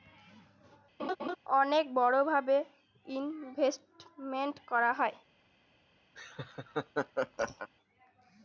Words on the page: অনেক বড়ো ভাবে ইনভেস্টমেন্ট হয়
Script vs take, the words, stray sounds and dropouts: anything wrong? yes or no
yes